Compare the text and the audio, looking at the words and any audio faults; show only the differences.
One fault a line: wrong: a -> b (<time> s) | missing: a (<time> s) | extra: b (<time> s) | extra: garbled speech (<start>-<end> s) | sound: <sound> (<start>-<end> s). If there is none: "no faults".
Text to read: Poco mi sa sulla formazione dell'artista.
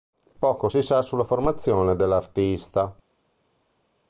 wrong: mi -> si (0.7 s)